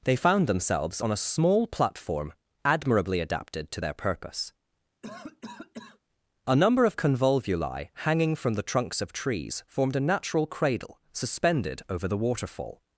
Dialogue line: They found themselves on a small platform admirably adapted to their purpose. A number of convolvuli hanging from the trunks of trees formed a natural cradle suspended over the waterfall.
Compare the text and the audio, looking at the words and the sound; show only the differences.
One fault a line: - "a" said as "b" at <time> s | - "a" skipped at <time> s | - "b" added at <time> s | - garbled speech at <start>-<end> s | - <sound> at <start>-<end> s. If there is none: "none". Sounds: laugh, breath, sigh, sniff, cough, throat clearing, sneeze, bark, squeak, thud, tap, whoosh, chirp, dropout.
- cough at 5.0-6.0 s